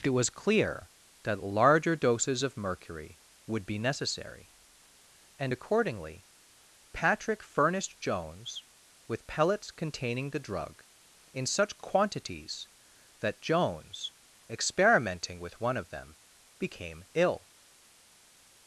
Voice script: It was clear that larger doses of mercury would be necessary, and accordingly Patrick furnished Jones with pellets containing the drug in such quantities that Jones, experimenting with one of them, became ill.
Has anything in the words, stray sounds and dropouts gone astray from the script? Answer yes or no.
no